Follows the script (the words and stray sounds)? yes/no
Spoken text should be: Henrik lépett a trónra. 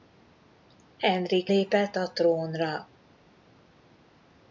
yes